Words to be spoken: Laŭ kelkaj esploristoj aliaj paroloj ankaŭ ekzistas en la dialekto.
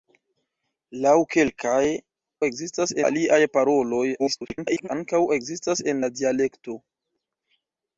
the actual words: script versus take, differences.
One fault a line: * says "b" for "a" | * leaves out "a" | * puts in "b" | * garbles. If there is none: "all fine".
* says "ekzistas" for "esploristoj"
* garbles